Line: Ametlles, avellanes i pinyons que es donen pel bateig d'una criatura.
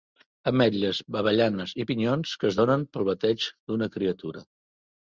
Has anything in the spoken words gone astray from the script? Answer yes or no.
no